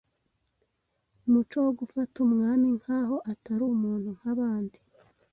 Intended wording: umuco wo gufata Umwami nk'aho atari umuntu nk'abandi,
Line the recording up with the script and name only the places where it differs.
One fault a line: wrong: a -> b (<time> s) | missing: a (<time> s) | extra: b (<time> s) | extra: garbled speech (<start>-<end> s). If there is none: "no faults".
no faults